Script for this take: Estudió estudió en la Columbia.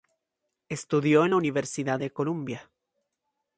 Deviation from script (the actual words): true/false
true